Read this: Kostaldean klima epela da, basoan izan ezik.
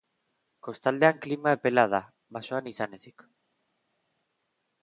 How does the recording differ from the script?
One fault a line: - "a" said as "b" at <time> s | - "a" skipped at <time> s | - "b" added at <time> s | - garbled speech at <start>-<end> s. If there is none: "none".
none